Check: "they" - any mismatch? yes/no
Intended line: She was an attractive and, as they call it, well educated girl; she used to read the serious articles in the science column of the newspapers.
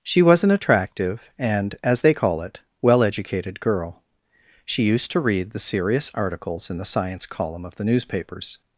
no